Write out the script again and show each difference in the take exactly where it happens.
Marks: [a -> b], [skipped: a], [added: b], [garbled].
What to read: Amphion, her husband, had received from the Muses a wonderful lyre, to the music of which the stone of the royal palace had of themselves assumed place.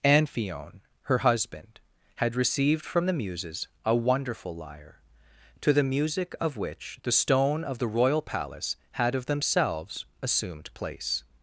Amphion, her husband, had received from the Muses a wonderful lyre, to the music of which the stone of the royal palace had of themselves assumed place.